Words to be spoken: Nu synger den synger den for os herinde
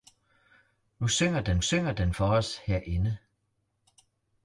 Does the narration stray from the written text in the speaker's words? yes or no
no